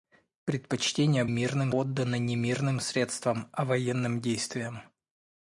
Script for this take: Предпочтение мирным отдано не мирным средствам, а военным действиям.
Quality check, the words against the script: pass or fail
pass